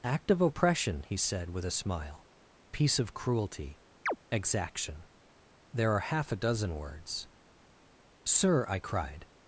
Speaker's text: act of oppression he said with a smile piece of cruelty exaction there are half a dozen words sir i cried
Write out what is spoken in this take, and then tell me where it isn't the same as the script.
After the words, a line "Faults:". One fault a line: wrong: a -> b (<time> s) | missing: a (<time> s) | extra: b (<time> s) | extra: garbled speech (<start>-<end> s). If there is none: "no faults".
act of oppression he said with a smile piece of cruelty exaction there are half a dozen words sir i cried
Faults:
no faults